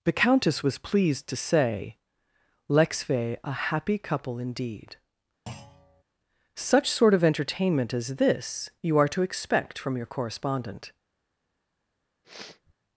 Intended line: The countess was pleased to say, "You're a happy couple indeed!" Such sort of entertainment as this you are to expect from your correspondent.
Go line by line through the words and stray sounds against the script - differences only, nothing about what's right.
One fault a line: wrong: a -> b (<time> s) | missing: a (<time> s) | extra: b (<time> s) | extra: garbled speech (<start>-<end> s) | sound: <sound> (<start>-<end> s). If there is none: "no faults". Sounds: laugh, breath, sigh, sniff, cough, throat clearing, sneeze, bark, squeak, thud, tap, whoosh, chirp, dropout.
wrong: You're -> Lexve (2.7 s)
sound: thud (5.5-6.0 s)
sound: sniff (12.2-12.7 s)